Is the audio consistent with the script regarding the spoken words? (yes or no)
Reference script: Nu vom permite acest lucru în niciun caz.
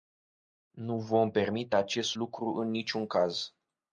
yes